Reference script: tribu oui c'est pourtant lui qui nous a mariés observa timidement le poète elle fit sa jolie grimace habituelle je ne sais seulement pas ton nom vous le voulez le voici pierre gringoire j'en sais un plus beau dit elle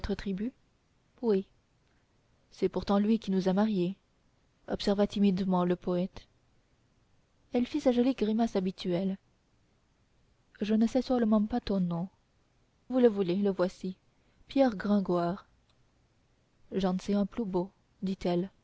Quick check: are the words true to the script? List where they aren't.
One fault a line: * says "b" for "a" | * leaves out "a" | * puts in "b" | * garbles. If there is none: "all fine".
all fine